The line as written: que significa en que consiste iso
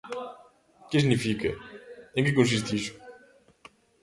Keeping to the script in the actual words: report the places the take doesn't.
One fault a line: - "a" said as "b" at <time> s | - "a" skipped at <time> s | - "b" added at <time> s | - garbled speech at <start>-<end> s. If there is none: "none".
none